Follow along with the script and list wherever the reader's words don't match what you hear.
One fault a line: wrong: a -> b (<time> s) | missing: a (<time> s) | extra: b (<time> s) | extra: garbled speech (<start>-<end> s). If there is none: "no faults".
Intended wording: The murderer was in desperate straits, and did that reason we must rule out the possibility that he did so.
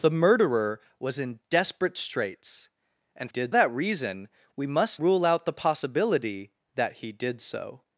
no faults